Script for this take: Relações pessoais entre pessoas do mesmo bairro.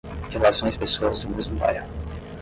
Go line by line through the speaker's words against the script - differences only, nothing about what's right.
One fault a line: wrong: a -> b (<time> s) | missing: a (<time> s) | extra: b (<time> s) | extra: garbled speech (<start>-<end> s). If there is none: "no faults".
missing: pessoais entre (0.8 s)